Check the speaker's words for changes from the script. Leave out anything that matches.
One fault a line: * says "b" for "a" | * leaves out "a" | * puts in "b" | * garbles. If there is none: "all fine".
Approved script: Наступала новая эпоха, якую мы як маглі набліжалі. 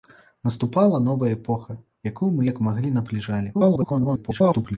* garbles